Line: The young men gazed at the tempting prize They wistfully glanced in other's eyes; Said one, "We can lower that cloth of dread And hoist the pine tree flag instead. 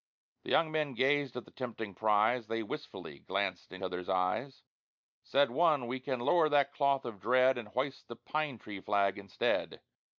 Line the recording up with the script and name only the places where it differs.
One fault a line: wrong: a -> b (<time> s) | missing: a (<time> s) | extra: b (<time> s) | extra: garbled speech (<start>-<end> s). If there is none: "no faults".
no faults